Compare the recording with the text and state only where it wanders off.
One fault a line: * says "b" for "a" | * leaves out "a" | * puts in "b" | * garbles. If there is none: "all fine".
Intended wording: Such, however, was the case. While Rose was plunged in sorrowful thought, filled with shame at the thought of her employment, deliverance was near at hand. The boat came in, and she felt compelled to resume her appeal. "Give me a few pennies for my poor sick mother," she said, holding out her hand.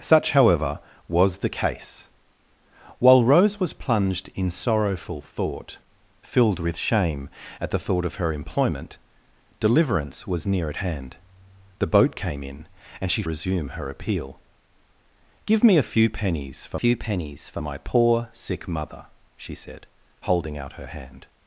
* leaves out "felt compelled to"
* puts in "few pennies for"